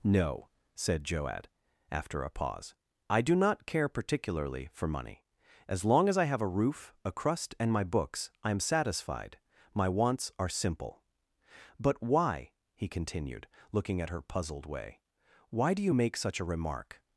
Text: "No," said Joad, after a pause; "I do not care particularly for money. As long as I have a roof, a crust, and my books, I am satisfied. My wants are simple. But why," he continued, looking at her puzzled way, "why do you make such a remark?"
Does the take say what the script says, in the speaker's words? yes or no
yes